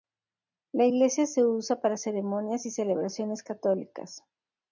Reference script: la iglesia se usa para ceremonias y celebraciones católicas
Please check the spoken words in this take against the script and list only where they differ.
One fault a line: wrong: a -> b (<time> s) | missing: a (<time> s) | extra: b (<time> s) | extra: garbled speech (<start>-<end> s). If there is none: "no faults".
no faults